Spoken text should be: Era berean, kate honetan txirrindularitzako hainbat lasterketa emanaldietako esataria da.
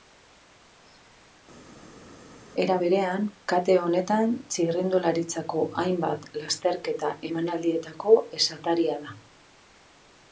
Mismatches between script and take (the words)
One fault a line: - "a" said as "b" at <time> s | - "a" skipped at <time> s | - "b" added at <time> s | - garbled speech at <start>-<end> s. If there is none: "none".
none